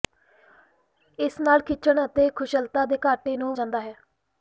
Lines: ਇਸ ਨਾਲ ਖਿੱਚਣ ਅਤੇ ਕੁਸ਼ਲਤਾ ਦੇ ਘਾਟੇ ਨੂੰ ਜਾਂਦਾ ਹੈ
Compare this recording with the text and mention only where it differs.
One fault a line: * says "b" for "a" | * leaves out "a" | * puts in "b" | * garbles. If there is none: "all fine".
all fine